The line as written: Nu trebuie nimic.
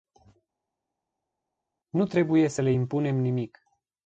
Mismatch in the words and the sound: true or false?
true